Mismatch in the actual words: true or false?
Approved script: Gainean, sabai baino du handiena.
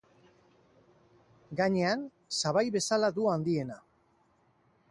true